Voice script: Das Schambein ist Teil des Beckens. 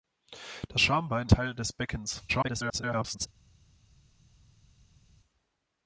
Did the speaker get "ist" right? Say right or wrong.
wrong